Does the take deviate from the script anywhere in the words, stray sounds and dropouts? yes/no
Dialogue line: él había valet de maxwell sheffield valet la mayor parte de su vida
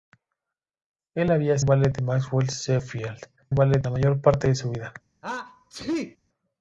yes